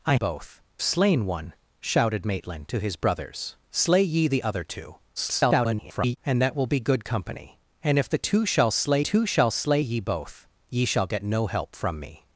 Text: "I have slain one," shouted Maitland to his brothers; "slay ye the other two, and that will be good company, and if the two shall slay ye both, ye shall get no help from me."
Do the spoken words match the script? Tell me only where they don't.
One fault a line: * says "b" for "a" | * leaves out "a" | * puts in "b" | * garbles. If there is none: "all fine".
* says "both" for "have"
* garbles
* puts in "two shall slay"